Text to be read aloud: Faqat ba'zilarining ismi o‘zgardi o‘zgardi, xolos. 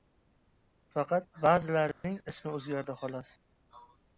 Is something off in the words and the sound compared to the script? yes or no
yes